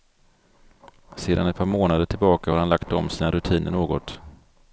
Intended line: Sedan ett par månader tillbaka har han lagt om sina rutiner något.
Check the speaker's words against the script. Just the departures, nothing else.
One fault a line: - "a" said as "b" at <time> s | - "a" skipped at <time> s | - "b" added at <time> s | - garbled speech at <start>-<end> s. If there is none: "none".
none